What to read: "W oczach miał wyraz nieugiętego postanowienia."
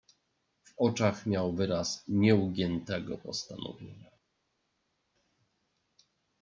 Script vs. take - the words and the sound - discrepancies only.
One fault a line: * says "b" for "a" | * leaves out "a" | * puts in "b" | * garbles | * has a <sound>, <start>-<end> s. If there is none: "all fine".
all fine